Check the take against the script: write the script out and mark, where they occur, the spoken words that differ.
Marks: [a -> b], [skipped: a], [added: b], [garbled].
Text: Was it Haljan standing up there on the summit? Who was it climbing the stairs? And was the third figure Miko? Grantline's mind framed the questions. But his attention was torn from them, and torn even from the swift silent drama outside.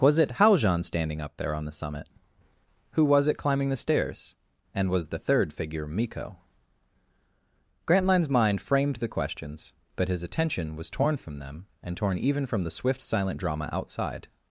Was it Haljan standing up there on the summit? Who was it climbing the stairs? And was the third figure Miko? Grantline's mind framed the questions. But his attention was torn from them, and torn even from the swift silent drama outside.